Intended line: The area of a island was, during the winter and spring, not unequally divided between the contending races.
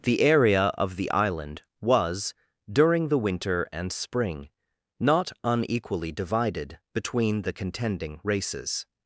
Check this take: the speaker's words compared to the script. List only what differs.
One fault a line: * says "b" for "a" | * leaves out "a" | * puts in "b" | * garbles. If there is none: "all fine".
* says "the" for "a"